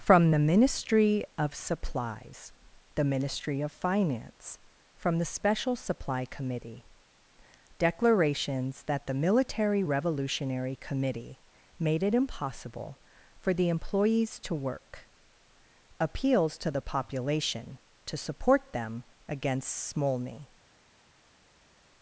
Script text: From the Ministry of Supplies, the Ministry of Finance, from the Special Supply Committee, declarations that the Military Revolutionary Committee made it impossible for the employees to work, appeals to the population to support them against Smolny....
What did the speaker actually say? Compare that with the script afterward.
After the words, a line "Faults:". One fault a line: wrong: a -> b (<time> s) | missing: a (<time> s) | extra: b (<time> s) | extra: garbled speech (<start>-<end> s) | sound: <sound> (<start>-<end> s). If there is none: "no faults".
From the Ministry of Supplies, the Ministry of Finance, from the Special Supply Committee, declarations that the Military Revolutionary Committee made it impossible for the employees to work, appeals to the population to support them against Smolny....
Faults:
no faults